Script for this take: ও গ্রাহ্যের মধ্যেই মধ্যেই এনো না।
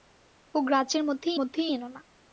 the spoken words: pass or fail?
pass